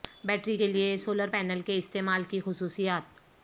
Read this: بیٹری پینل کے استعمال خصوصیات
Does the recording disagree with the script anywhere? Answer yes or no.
yes